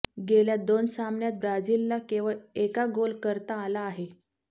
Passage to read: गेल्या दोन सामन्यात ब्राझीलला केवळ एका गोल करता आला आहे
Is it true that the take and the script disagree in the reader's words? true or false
false